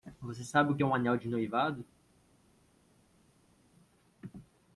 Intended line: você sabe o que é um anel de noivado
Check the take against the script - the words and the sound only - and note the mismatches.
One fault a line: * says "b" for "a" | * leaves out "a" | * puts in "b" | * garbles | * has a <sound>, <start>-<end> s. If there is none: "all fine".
all fine